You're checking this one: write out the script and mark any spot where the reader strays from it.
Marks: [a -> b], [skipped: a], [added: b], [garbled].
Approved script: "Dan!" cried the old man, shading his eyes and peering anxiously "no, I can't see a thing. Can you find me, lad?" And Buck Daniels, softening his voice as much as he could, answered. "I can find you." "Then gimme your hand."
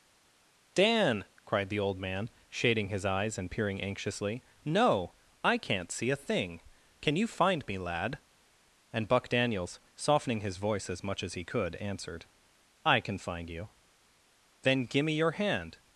"Dan!" cried the old man, shading his eyes and peering anxiously "no, I can't see a thing. Can you find me, lad?" And Buck Daniels, softening his voice as much as he could, answered. "I can find you." "Then gimme your hand."